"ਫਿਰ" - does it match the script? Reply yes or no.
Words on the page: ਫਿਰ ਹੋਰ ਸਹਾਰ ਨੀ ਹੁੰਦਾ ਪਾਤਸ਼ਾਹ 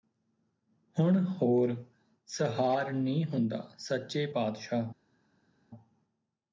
no